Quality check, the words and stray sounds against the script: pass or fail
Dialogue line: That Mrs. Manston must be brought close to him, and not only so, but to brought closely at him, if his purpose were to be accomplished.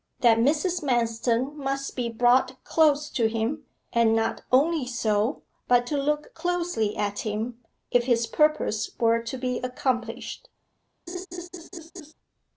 fail